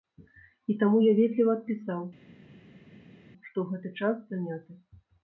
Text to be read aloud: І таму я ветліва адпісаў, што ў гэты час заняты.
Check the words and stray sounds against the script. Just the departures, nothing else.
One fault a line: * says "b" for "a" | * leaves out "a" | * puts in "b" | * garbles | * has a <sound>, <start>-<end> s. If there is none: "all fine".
all fine